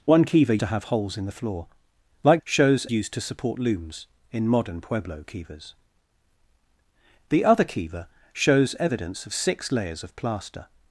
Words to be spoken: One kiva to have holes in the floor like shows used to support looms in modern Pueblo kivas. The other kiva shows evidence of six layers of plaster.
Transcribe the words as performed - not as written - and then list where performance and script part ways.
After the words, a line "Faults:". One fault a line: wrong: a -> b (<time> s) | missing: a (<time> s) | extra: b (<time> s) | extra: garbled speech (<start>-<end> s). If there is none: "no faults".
One kiva to have holes in the floor like shows used to support looms in modern Pueblo kivas. The other kiva shows evidence of six layers of plaster.
Faults:
no faults